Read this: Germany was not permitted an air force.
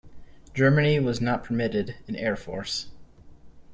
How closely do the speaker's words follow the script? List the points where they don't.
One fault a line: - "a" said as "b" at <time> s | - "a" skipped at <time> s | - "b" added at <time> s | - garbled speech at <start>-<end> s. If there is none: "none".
none